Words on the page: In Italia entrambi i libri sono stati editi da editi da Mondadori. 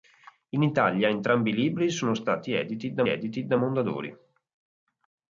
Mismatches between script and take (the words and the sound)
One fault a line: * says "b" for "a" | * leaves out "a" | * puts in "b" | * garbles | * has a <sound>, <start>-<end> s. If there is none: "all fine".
all fine